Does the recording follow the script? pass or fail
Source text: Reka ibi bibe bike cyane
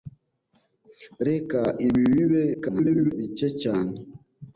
fail